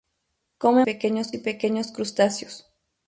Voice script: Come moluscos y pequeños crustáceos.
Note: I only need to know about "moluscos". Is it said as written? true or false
false